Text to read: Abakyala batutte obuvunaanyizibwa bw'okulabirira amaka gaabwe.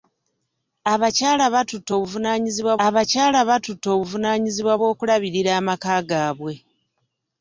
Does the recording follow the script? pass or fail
fail